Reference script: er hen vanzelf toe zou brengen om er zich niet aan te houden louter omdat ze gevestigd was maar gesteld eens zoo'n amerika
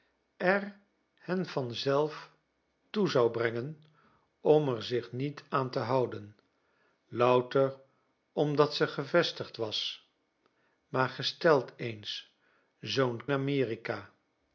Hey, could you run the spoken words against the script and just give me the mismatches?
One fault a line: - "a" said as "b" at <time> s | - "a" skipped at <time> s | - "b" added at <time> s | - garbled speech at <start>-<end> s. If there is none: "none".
none